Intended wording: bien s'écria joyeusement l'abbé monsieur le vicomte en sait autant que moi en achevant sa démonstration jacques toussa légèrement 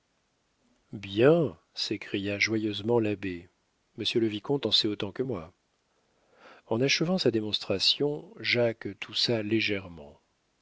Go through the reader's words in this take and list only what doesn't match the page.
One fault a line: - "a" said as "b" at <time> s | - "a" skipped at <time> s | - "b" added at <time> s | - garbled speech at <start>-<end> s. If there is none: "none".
none